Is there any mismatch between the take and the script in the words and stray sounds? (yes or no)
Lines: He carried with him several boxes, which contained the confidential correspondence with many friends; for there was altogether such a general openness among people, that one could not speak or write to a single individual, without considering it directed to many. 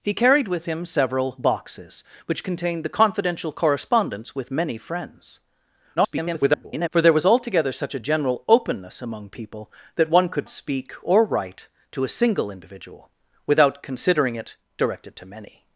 yes